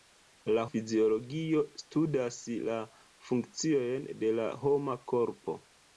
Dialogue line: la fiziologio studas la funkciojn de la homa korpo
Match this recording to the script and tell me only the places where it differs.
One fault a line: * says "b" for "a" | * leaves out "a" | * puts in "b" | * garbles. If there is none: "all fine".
all fine